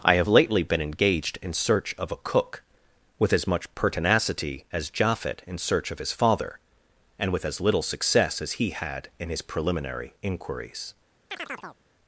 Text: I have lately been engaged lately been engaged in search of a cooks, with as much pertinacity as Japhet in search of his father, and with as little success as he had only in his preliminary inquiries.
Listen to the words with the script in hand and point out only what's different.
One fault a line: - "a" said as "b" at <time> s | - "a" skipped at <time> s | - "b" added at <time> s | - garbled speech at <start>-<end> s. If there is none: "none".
- "lately been engaged" skipped at 1.4 s
- "cooks" said as "cook" at 2.2 s
- "only" skipped at 9.1 s